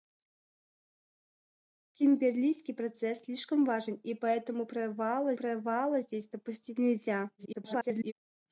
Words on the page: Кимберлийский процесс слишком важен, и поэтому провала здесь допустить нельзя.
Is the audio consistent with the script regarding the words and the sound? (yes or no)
no